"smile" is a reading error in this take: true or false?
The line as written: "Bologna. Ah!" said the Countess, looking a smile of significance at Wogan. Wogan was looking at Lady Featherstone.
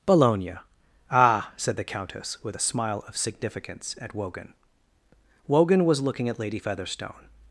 false